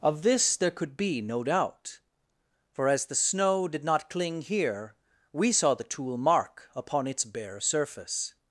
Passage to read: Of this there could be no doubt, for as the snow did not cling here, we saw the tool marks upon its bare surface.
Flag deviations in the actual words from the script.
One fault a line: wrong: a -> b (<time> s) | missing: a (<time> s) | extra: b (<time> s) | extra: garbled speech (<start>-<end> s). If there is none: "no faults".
wrong: marks -> mark (6.2 s)